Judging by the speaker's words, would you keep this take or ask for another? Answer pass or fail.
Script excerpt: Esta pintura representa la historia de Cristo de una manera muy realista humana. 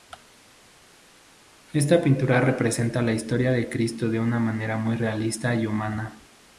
fail